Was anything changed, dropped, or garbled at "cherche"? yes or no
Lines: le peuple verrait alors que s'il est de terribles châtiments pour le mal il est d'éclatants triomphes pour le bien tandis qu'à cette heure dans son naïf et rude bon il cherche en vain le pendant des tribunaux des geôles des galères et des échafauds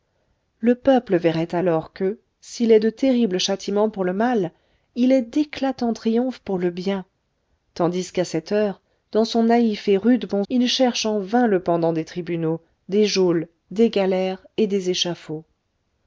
no